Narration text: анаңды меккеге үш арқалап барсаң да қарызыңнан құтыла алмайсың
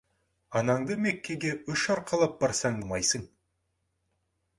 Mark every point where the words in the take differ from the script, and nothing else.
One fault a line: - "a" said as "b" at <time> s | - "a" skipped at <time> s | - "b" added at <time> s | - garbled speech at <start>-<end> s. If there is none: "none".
- "да қарызыңнан құтыла" skipped at 2.8 s